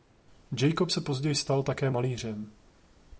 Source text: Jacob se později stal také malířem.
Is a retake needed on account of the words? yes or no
no